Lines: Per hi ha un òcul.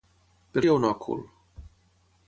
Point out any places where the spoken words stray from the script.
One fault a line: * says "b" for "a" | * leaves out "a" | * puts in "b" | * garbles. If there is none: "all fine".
all fine